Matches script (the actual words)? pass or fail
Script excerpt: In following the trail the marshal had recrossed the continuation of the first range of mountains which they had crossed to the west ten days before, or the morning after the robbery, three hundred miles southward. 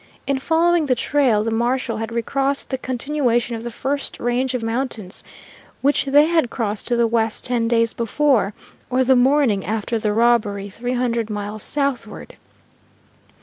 pass